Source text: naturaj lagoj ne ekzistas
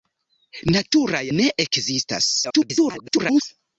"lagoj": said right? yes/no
no